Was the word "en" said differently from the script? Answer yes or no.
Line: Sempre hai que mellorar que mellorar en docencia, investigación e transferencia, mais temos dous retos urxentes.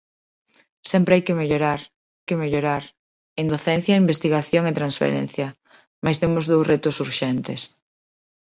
no